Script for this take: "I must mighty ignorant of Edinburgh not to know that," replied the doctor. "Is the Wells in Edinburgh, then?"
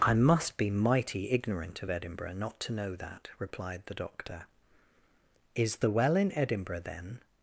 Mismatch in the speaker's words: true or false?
true